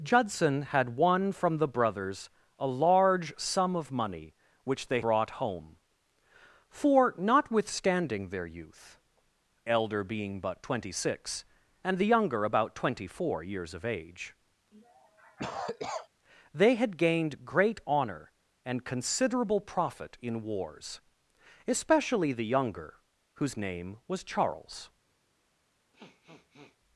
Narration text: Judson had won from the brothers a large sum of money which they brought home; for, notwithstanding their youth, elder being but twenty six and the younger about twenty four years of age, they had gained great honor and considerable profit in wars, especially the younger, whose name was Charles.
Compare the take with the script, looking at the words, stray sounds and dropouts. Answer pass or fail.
fail